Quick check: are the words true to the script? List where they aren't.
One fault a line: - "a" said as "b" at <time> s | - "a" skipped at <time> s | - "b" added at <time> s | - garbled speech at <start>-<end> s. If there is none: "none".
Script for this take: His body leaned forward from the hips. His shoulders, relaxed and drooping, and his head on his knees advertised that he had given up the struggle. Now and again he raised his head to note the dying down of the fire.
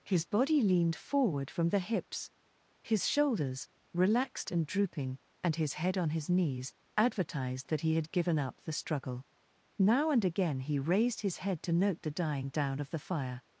none